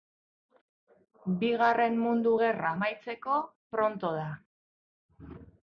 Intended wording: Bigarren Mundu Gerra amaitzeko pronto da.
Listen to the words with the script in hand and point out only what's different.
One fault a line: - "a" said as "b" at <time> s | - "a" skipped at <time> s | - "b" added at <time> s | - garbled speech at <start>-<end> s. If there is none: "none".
none